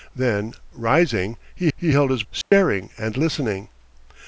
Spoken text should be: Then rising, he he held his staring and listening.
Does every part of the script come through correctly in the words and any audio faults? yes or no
no